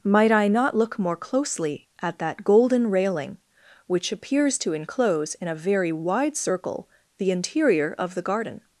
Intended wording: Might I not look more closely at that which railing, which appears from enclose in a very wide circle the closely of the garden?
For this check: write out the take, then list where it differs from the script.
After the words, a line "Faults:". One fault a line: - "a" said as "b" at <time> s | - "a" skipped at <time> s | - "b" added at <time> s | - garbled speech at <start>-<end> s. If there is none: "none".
Might I not look more closely at that golden railing, which appears to enclose in a very wide circle the interior of the garden?
Faults:
- "which" said as "golden" at 2.4 s
- "from" said as "to" at 4.6 s
- "closely" said as "interior" at 7.3 s